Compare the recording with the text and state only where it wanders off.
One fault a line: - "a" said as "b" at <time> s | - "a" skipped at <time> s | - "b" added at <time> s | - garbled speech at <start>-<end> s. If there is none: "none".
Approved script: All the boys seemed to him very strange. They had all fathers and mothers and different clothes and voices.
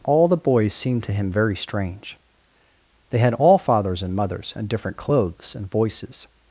none